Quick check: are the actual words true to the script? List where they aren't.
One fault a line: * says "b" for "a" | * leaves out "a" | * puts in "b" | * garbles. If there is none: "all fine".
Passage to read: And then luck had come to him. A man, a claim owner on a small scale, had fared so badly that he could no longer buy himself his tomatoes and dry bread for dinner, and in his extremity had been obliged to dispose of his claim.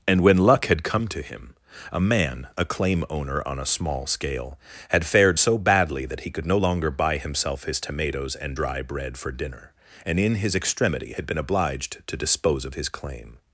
* says "when" for "then"